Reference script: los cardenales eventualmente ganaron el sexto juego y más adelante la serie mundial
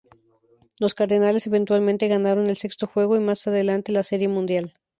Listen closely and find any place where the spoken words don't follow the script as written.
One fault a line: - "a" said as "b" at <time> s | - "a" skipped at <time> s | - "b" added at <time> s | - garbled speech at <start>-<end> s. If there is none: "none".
none